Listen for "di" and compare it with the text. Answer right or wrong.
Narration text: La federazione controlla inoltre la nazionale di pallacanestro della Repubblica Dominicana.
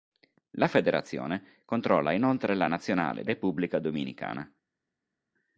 wrong